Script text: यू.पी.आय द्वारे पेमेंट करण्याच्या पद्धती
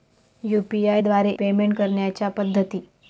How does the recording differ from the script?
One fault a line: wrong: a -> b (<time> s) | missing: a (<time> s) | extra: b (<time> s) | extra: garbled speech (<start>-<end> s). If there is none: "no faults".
no faults